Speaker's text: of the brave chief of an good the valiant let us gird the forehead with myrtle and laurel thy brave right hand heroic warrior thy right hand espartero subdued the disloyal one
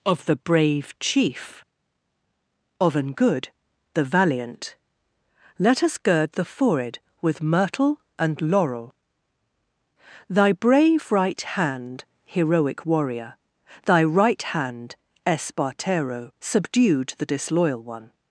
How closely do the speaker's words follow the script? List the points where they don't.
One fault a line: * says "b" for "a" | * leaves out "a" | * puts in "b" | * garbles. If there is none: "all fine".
all fine